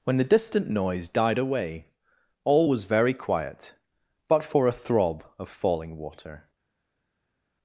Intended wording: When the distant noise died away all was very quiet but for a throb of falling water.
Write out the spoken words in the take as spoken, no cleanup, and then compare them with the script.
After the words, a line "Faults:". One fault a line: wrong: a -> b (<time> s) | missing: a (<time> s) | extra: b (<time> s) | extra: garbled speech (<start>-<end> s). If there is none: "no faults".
When the distant noise died away all was very quiet but for a throb of falling water.
Faults:
no faults